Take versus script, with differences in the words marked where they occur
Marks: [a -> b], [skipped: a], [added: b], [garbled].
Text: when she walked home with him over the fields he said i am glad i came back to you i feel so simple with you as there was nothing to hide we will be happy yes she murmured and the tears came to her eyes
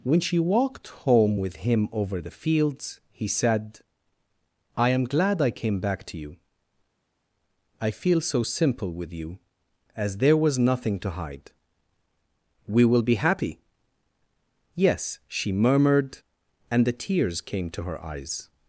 when she walked home with him over the fields he said i am glad i came back to you i feel so simple with you as there was nothing to hide we will be happy yes she murmured and the tears came to her eyes